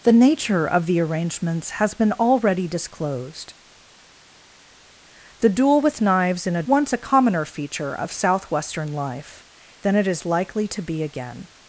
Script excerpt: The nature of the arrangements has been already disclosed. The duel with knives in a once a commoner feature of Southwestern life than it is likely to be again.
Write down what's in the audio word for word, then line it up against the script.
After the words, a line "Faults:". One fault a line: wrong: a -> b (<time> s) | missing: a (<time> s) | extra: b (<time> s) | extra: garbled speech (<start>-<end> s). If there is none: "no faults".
The nature of the arrangements has been already disclosed. The duel with knives in a once a commoner feature of Southwestern life than it is likely to be again.
Faults:
no faults